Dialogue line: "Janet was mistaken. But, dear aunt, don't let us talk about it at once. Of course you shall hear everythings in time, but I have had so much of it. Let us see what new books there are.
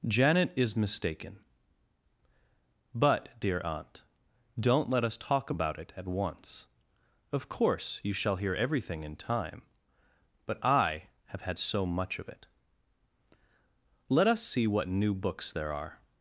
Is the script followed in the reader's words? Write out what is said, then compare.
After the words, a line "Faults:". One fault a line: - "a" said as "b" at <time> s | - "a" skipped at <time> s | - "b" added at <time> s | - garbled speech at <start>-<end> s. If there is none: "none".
"Janet is mistaken. But, dear aunt, don't let us talk about it at once. Of course you shall hear everything in time, but I have had so much of it. Let us see what new books there are.
Faults:
- "was" said as "is" at 0.5 s
- "everythings" said as "everything" at 8.5 s